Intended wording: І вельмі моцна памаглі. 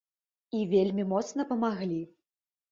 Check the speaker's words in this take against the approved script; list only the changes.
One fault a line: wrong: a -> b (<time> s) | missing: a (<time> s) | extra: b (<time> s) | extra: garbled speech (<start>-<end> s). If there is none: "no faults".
no faults